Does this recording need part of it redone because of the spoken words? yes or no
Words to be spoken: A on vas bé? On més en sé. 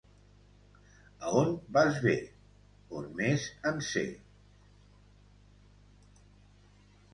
no